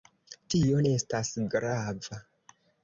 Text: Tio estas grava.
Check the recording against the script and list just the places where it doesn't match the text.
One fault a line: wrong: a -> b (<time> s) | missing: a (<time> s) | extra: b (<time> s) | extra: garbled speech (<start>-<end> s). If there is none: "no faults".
no faults